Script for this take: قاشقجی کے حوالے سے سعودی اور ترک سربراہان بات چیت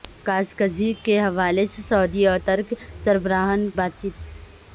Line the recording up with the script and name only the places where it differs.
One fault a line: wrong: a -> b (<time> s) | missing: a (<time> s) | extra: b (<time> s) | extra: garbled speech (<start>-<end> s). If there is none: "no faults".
no faults